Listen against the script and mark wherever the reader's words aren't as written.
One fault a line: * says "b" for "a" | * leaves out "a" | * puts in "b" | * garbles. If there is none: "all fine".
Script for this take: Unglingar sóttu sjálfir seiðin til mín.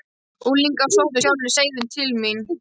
all fine